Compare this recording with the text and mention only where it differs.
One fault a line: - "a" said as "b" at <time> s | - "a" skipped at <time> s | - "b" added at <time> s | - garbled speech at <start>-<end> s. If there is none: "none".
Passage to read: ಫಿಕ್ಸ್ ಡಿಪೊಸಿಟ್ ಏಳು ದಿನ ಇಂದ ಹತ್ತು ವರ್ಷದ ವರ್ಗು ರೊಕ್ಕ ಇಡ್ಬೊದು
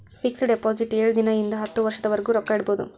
none